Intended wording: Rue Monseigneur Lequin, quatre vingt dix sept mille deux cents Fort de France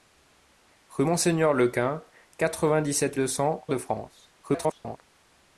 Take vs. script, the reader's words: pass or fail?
fail